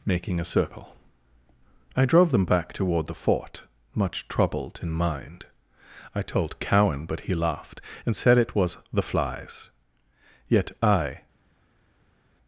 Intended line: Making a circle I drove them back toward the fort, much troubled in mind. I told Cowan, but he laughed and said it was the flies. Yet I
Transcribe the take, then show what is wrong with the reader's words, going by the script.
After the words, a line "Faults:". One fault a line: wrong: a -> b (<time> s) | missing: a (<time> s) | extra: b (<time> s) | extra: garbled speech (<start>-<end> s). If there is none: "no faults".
Making a circle I drove them back toward the fort, much troubled in mind. I told Cowan, but he laughed and said it was the flies. Yet I
Faults:
no faults